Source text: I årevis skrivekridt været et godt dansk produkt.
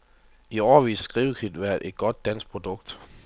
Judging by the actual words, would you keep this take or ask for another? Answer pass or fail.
pass